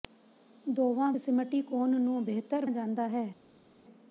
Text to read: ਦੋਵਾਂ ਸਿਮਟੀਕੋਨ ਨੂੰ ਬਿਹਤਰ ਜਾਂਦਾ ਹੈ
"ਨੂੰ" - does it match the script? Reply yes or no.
yes